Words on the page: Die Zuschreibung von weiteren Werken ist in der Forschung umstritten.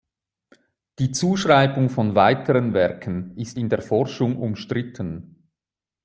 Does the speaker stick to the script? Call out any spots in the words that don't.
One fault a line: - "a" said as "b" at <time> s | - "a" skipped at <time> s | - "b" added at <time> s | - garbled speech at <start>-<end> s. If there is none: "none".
none